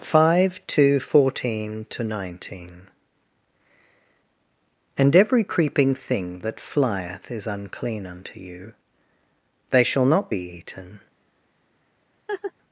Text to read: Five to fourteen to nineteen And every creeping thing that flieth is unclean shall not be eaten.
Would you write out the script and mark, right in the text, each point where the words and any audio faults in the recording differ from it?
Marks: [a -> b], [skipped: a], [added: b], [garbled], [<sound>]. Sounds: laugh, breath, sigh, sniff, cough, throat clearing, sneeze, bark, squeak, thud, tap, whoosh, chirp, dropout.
Five to fourteen to nineteen And every creeping thing that flieth is unclean [added: unto you they] shall not be eaten. [laugh]